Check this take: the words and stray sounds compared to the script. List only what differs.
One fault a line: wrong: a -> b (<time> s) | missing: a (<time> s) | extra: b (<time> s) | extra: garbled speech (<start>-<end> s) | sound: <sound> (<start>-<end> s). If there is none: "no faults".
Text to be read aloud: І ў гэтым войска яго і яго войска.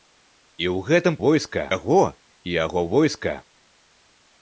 no faults